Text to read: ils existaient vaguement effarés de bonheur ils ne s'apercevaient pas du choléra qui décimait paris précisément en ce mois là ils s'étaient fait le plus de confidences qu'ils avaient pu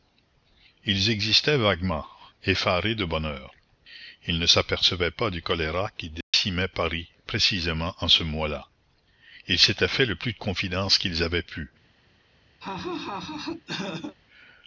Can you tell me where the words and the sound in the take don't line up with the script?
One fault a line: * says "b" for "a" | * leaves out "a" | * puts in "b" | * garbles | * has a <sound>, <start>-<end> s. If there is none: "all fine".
* has a dropout, 6.2-6.3 s
* has a laugh, 12.6-14.2 s